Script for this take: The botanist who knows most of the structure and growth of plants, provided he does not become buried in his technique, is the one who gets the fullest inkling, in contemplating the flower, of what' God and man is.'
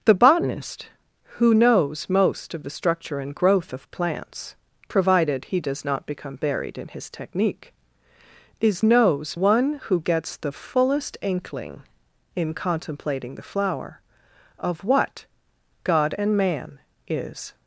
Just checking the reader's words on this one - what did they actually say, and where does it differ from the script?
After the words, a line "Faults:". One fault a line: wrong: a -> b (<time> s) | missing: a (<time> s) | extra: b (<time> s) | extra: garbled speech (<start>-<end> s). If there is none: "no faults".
The botanist who knows most of the structure and growth of plants, provided he does not become buried in his technique, is knows one who gets the fullest inkling, in contemplating the flower, of what' God and man is.'
Faults:
wrong: the -> knows (8.8 s)